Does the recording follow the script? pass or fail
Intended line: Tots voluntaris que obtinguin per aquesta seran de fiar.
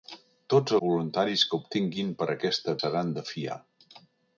pass